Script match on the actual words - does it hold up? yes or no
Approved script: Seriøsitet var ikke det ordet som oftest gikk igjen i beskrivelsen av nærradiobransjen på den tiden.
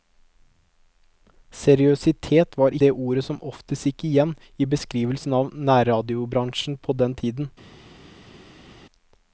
no